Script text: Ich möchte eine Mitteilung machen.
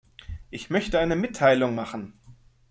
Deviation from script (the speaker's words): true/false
false